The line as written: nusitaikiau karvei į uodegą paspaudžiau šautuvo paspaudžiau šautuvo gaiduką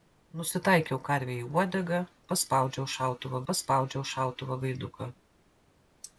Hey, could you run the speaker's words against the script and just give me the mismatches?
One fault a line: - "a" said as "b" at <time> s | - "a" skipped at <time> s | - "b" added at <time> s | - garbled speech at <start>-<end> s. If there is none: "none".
none